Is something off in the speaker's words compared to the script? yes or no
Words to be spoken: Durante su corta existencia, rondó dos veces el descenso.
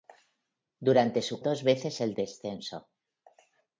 yes